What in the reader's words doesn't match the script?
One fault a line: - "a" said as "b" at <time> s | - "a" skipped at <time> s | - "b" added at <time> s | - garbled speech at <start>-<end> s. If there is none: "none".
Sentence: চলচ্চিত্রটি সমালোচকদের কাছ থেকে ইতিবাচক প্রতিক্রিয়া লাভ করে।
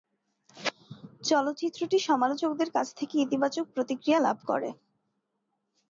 none